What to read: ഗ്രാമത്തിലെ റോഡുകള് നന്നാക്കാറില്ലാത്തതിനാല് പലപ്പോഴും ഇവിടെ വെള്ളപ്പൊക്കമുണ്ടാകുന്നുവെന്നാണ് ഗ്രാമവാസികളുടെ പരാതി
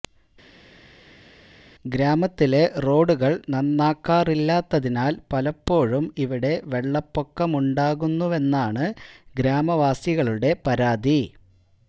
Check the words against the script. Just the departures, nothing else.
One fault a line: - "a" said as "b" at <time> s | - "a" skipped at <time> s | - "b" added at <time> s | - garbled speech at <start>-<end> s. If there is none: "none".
none